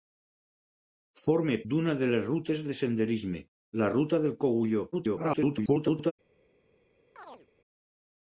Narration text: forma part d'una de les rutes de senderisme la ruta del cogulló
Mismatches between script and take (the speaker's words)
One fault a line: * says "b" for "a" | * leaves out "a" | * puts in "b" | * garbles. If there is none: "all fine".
* leaves out "part"
* garbles